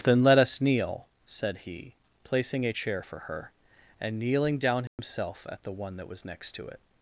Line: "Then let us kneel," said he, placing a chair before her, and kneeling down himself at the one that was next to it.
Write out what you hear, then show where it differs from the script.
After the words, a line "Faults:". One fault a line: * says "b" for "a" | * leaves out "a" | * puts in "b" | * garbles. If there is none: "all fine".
"Then let us kneel," said he, placing a chair for her, and kneeling down himself at the one that was next to it.
Faults:
* says "for" for "before"